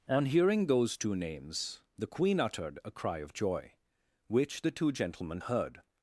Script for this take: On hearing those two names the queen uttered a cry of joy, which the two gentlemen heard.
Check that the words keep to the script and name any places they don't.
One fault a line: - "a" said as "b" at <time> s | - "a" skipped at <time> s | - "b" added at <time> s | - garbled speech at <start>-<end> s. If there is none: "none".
none